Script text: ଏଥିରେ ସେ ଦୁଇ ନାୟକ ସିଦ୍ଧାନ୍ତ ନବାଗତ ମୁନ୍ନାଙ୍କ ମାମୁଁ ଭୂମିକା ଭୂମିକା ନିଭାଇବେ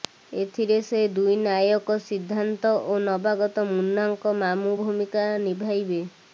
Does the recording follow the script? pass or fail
fail